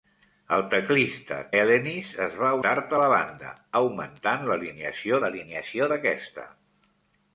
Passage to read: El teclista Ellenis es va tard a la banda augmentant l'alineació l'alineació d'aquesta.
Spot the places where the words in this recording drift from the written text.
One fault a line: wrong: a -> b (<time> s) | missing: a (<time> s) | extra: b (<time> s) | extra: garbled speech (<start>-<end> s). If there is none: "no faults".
no faults